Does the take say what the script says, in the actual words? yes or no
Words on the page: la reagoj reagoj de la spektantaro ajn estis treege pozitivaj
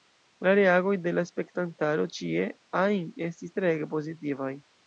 no